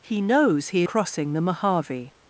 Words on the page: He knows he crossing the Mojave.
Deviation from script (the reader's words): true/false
false